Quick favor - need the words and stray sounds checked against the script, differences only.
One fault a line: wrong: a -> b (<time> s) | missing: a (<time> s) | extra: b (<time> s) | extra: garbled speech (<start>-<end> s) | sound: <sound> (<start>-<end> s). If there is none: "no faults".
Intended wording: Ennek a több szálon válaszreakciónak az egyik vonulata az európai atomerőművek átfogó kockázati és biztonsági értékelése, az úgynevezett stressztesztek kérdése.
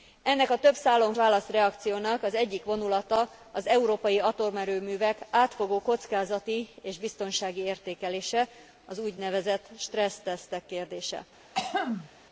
sound: throat clearing (11.5-12.1 s)